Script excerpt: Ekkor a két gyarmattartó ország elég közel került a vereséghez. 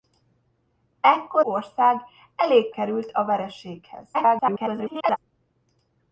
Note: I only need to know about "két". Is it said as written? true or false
false